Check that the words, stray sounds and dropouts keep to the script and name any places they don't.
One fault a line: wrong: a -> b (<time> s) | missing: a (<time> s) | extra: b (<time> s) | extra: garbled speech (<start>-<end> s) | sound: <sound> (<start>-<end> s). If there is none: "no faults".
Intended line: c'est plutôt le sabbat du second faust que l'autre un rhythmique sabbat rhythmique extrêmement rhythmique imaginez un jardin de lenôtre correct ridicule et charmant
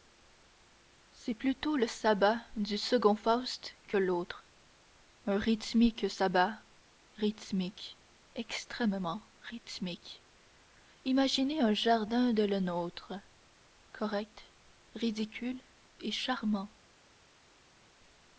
no faults